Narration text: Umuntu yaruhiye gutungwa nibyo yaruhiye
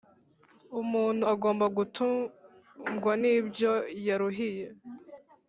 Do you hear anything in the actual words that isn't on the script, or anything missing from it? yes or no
yes